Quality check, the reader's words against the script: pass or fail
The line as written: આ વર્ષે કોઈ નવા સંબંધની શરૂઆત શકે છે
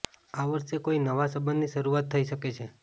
fail